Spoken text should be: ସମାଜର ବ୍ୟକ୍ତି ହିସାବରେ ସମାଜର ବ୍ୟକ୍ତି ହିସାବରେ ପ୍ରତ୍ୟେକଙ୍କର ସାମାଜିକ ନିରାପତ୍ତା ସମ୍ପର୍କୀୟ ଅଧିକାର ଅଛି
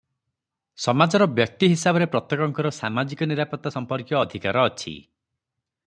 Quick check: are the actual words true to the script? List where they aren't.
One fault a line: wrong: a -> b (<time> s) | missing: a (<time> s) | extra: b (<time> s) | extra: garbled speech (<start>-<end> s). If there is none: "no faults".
missing: ସମାଜର ବ୍ୟକ୍ତି ହିସାବରେ (2.0 s)